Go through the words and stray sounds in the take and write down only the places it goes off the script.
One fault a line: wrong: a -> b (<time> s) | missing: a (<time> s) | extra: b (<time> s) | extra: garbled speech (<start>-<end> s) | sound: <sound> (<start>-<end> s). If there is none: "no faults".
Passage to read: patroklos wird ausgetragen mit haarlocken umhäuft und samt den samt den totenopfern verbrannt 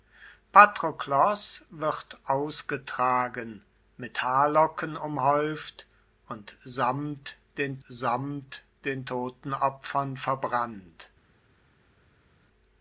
no faults